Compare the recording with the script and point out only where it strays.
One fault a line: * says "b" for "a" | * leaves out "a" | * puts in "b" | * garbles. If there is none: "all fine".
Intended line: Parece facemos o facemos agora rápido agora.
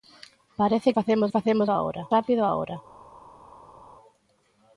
all fine